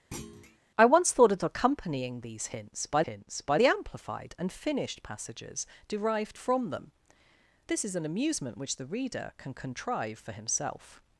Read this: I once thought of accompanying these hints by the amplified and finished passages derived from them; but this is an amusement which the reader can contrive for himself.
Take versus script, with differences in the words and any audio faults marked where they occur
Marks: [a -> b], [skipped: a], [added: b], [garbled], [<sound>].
[thud] I once thought of accompanying these hints by [added: hints by] the amplified and finished passages derived from them; [skipped: but] this is an amusement which the reader can contrive for himself.